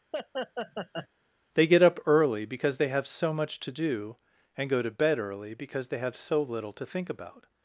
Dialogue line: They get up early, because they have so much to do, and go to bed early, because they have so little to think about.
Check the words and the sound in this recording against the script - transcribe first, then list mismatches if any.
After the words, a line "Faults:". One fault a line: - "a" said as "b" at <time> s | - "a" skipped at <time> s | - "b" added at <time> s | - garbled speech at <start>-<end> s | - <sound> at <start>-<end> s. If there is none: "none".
They get up early, because they have so much to do, and go to bed early, because they have so little to think about.
Faults:
- laugh at 0.1-1.1 s